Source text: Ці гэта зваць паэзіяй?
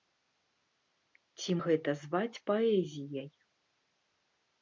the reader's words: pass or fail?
pass